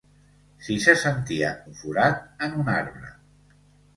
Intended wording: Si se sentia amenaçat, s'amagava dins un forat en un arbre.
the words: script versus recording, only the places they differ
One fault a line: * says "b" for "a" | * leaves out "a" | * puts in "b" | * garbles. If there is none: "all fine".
* leaves out "amenaçat s'amagava dins"